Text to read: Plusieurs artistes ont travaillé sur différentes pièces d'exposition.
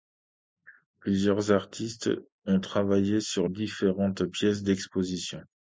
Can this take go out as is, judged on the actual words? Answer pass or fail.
pass